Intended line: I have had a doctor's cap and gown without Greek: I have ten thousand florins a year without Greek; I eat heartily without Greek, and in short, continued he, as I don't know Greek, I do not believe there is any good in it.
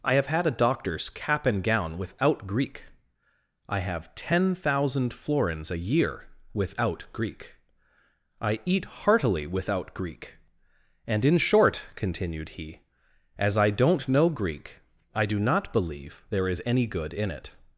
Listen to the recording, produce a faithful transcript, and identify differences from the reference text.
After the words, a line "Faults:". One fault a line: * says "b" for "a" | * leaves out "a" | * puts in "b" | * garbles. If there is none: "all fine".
I have had a doctor's cap and gown without Greek: I have ten thousand florins a year without Greek; I eat heartily without Greek, and in short, continued he, as I don't know Greek, I do not believe there is any good in it.
Faults:
all fine